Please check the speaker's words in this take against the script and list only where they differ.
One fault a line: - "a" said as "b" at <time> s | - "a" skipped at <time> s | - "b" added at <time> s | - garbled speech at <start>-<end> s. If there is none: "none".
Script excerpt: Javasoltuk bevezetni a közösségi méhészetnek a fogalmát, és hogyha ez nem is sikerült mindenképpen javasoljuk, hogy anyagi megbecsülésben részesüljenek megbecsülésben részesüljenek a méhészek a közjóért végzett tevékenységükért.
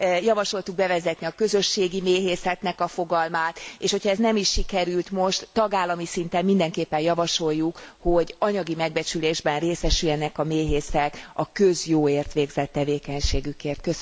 - "most tagállami szinten" added at 5.1 s
- "megbecsülésben részesüljenek" skipped at 10.4 s